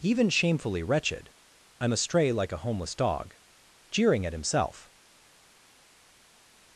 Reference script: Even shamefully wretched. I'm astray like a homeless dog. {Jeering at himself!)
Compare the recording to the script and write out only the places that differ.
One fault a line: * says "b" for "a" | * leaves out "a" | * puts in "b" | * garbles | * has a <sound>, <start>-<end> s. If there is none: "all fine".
all fine